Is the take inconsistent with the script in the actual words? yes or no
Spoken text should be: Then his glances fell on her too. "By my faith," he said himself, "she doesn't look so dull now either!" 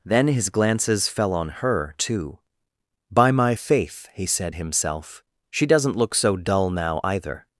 no